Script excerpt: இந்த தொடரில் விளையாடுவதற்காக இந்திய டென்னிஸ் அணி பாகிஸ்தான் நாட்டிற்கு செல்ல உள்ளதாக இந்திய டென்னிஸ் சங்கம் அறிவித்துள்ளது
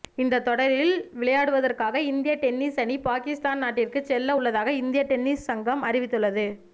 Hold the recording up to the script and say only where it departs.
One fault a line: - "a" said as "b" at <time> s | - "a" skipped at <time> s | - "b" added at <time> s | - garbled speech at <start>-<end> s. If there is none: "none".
none